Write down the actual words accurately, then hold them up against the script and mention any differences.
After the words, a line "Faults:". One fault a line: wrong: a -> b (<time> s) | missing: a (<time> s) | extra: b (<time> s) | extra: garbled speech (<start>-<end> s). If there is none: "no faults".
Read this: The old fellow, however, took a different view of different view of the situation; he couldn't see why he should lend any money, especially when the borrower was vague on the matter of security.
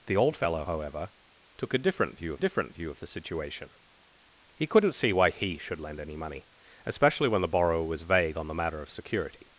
The old fellow, however, took a different view of different view of the situation; he couldn't see why he should lend any money, especially when the borrower was vague on the matter of security.
Faults:
no faults